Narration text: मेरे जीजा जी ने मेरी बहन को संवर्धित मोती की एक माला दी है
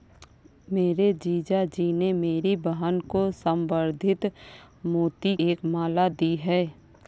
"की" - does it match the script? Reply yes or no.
no